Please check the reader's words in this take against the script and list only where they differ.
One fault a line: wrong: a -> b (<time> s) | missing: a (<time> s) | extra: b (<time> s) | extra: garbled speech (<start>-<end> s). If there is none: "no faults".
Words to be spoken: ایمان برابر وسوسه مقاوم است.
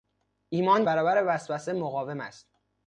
no faults